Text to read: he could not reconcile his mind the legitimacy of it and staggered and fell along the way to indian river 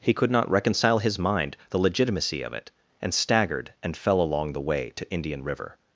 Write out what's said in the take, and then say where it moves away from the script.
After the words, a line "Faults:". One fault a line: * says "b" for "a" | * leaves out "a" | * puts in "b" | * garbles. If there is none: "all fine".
he could not reconcile his mind the legitimacy of it and staggered and fell along the way to indian river
Faults:
all fine